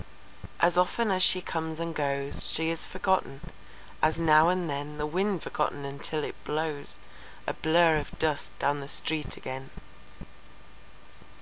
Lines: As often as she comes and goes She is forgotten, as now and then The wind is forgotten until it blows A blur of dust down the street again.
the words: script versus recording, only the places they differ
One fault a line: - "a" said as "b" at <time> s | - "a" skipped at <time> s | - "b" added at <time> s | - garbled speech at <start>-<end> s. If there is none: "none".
- "is" skipped at 5.4 s